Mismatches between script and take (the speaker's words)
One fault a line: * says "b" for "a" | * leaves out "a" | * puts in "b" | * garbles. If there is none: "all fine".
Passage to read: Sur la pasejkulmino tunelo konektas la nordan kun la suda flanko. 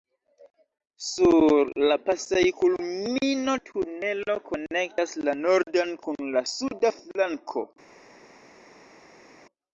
all fine